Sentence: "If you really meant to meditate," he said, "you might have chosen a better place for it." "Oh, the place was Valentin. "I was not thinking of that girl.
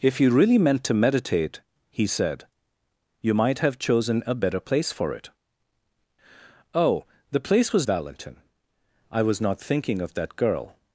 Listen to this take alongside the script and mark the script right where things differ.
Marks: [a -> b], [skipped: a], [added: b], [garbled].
"If you really meant to meditate," he said, "you might have chosen a better place for it." "Oh, the place was Valentin. "I was not thinking of that girl.